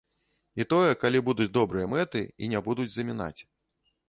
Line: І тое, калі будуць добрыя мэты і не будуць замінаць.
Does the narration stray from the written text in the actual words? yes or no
no